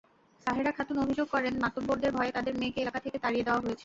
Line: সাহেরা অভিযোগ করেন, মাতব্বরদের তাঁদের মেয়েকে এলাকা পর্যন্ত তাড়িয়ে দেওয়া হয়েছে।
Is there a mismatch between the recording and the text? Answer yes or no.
yes